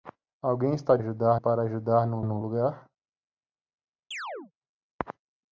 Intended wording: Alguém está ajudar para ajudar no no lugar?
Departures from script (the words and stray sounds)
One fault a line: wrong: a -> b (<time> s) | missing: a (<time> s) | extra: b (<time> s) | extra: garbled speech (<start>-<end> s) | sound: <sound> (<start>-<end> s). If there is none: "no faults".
sound: chirp (4.1-4.5 s)